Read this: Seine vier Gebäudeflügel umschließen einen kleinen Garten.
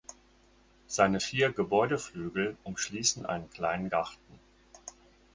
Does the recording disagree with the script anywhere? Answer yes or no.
no